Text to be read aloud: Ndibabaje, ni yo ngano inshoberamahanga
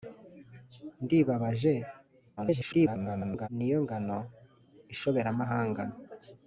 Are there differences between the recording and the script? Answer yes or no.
yes